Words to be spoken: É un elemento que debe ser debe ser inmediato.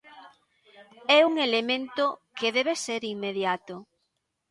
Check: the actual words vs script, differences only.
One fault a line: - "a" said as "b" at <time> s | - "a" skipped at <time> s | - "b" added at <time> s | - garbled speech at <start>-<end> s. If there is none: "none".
- "debe ser" skipped at 3.0 s